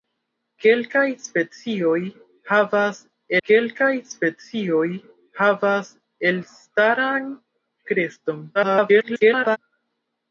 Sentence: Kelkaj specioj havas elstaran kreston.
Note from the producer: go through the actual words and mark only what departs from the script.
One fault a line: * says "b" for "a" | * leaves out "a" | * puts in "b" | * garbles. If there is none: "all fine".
* puts in "kelkaj specioj havas"
* garbles